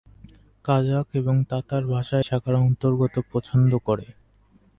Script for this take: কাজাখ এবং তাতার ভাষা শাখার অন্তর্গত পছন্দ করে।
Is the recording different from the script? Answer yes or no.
no